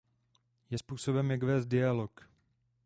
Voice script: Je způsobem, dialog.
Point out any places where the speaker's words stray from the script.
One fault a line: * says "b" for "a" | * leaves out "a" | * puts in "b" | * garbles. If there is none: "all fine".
* puts in "jak vést"